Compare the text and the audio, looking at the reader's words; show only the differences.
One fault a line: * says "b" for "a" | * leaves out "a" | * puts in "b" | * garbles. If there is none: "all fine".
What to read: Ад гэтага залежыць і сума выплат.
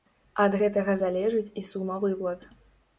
all fine